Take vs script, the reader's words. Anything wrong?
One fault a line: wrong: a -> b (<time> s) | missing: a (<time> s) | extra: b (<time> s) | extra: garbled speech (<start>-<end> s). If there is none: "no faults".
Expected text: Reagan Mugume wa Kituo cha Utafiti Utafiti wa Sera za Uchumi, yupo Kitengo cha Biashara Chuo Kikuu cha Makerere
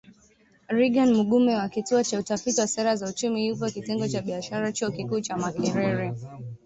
missing: Utafiti (2.6 s)